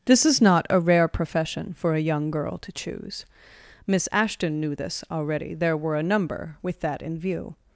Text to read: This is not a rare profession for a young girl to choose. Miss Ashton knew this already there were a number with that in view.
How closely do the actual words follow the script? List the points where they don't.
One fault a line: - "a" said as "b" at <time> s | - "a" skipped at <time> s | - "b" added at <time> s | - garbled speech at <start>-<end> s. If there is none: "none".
none